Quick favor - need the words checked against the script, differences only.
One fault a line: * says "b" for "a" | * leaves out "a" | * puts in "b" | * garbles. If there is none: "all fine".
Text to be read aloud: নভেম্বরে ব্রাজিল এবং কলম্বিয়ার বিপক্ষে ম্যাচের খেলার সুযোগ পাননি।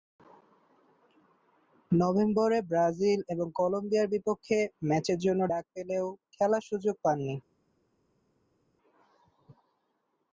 * puts in "জন্য ডাক পেলেও"